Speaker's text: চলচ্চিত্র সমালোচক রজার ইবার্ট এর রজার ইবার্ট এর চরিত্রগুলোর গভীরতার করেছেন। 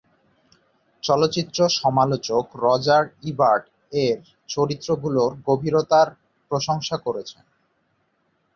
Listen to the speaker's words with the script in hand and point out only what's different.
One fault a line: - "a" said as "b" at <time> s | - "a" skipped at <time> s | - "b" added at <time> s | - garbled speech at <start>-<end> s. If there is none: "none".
- "রজার ইবার্ট এর" skipped at 4.2 s
- "প্রশংসা" added at 6.5 s